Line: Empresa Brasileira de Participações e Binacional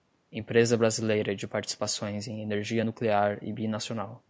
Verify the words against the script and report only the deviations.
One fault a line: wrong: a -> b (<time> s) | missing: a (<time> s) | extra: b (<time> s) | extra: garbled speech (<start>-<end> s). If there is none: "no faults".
extra: em Energia Nuclear (2.3 s)